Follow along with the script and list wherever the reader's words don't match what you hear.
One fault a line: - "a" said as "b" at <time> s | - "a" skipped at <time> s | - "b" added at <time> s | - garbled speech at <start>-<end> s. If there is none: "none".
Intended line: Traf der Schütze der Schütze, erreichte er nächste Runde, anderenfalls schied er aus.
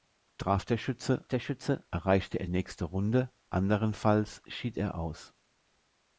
none